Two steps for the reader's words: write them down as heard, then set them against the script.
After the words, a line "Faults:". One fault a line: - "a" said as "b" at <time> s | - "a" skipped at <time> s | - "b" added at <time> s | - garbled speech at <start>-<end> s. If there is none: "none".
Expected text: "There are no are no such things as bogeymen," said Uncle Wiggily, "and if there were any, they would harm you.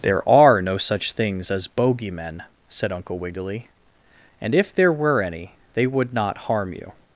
"There are no such things as bogeymen," said Uncle Wiggily, "and if there were any, they would not harm you.
Faults:
- "are no" skipped at 0.8 s
- "not" added at 6.1 s